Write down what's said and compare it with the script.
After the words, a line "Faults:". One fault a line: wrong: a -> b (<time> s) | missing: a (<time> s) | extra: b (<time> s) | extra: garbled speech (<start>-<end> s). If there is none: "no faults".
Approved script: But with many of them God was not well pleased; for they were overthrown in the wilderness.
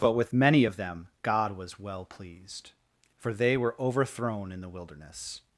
But with many of them God was well pleased; for they were overthrown in the wilderness.
Faults:
missing: not (1.8 s)